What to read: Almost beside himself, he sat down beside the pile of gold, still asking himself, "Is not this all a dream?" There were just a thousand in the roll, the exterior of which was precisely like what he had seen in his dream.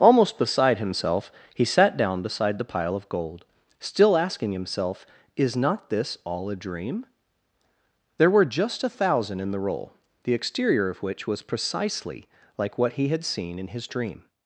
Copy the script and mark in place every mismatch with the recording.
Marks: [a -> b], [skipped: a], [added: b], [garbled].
Almost beside himself, he sat down beside the pile of gold, still asking himself, "Is not this all a dream?" There were just a thousand in the roll, the exterior of which was precisely like what he had seen in his dream.